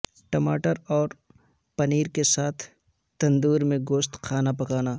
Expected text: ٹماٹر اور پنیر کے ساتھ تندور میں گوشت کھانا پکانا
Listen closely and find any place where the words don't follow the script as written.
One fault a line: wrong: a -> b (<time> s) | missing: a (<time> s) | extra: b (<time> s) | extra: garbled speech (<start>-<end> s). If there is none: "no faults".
no faults